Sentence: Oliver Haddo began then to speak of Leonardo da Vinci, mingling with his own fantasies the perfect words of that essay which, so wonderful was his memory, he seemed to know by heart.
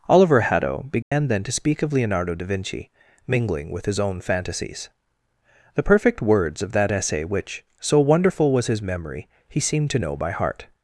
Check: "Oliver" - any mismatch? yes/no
no